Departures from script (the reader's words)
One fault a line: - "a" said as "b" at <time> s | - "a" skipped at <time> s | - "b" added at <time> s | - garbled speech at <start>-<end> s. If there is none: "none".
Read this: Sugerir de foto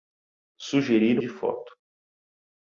none